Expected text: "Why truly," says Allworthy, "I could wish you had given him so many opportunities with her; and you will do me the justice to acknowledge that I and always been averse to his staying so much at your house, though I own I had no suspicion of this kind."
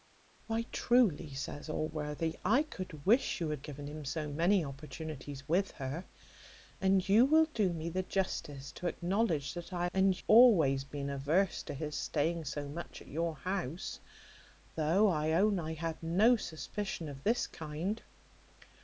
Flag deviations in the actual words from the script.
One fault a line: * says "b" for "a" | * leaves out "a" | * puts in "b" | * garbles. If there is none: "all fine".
all fine